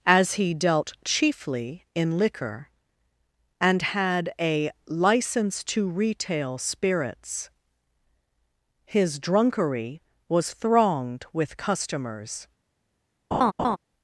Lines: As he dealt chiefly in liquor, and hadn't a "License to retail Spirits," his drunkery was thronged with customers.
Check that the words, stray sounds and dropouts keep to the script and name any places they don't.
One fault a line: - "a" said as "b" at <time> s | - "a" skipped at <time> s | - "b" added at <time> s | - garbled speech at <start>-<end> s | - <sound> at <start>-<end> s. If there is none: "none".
- "hadn't" said as "had" at 3.8 s
- laugh at 13.3-13.8 s